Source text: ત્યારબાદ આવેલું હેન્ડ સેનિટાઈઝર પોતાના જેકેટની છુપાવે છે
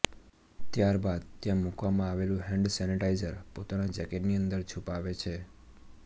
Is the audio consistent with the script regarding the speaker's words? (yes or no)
no